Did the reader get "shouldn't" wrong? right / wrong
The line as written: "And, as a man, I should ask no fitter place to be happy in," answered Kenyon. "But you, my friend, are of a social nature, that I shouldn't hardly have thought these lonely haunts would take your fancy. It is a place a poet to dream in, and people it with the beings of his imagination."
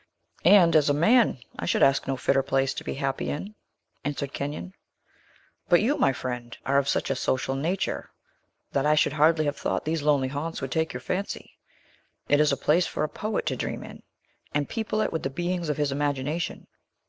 wrong